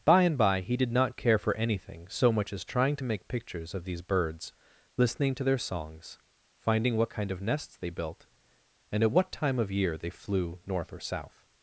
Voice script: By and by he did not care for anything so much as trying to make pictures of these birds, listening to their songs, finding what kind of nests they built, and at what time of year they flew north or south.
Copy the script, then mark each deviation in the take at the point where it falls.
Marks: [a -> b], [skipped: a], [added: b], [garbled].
By and by he did not care for anything so much as trying to make pictures of these birds, listening to their songs, finding what kind of nests they built, and at what time of year they flew north or south.